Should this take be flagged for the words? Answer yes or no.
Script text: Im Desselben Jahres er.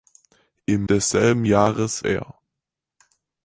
no